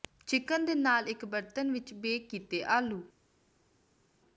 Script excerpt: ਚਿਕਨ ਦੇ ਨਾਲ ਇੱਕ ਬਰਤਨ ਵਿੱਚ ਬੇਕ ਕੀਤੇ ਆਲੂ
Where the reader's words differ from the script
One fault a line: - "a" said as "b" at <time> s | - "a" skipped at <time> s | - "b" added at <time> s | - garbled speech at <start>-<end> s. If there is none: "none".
none